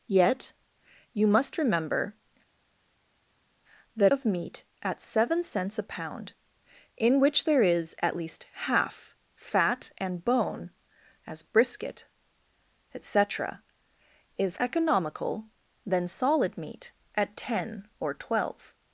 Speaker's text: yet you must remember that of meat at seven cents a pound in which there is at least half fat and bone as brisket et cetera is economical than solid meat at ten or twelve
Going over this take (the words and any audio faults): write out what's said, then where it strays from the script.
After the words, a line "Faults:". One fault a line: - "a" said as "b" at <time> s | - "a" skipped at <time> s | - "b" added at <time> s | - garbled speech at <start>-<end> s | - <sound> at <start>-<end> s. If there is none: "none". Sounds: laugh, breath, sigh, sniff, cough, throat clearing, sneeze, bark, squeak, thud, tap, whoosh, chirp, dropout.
yet you must remember that of meat at seven cents a pound in which there is at least half fat and bone as brisket et cetera is economical than solid meat at ten or twelve
Faults:
none